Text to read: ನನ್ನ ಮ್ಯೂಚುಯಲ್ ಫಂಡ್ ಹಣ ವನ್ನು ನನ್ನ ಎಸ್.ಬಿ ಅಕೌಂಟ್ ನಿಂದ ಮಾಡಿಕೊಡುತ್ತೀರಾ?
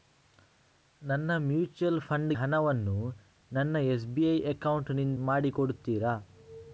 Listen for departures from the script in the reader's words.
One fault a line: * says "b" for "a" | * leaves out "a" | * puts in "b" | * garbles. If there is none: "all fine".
all fine